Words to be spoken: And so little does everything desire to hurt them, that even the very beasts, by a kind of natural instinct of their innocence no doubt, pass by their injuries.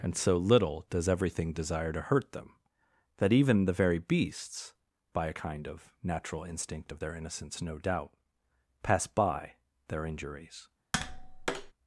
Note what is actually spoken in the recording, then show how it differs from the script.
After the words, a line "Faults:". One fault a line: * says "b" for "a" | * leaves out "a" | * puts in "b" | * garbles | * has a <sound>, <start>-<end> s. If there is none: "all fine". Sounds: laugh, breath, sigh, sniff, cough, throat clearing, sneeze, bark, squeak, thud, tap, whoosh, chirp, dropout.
And so little does everything desire to hurt them, that even the very beasts, by a kind of natural instinct of their innocence no doubt, pass by their injuries.
Faults:
* has a tap, 10.9-11.7 s